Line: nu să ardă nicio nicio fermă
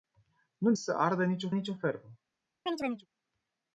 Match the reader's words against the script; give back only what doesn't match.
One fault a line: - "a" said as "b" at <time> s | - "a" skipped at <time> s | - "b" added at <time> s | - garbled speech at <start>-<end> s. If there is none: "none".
none